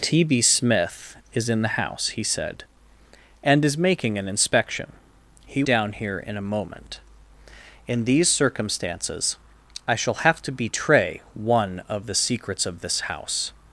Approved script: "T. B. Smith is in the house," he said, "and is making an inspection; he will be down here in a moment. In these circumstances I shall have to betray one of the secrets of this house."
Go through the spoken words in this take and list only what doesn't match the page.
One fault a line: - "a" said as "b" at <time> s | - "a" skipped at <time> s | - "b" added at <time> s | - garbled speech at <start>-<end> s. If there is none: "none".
- "will be" skipped at 5.6 s